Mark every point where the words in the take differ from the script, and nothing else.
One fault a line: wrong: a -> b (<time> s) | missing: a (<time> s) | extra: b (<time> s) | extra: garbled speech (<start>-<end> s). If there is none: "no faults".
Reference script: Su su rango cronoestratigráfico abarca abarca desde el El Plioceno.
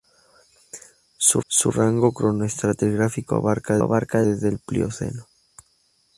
no faults